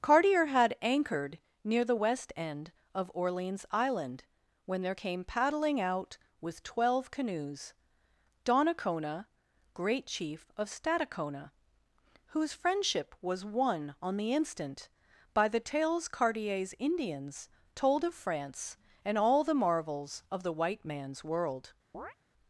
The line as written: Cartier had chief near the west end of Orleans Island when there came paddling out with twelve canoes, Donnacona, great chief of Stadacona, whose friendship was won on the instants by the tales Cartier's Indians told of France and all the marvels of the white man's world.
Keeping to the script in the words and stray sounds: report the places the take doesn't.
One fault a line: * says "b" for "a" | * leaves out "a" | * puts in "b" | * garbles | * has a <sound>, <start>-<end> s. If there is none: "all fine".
* says "anchored" for "chief"
* says "instant" for "instants"
* has a chirp, 21.9-22.2 s